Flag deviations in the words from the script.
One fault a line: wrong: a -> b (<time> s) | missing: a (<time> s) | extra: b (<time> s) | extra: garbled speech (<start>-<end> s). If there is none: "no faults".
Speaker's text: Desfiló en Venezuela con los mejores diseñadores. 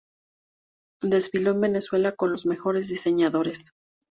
no faults